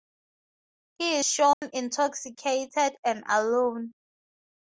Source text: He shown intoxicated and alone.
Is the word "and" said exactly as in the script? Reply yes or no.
yes